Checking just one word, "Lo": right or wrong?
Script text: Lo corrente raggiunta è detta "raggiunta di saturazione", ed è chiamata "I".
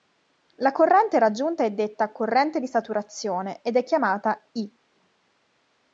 wrong